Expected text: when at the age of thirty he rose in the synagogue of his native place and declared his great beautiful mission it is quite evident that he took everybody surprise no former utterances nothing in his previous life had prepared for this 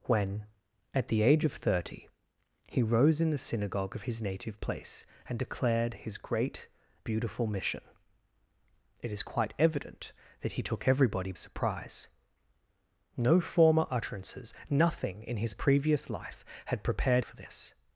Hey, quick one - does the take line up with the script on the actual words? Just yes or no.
yes